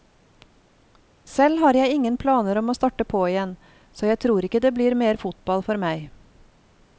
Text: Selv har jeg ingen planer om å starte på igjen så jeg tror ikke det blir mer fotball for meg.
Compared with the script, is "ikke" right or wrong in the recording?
right